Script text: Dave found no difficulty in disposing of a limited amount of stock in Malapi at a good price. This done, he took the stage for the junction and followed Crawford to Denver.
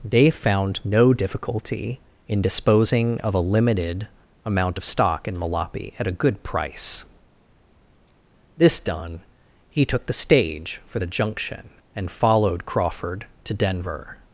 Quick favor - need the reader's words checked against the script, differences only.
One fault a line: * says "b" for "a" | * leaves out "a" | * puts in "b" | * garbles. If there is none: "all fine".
all fine